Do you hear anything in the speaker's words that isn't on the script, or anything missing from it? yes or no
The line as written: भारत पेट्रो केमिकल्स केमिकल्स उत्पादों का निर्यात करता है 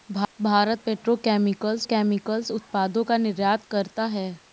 no